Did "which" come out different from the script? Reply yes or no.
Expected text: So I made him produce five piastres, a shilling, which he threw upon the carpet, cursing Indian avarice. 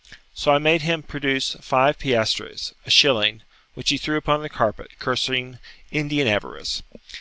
no